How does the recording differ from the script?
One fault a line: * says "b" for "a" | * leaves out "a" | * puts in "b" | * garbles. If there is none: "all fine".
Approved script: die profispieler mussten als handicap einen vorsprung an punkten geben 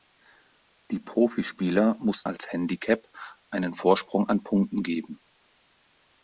all fine